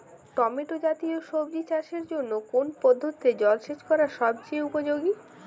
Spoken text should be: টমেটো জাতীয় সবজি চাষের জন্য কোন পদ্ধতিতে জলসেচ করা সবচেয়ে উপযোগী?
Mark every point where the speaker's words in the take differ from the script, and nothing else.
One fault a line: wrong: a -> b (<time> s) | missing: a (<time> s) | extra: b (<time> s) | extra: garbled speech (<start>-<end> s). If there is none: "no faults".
no faults